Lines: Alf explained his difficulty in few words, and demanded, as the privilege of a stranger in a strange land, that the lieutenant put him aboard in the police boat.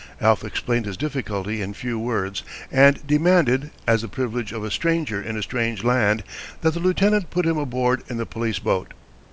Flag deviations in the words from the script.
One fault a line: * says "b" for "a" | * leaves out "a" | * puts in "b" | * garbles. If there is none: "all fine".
all fine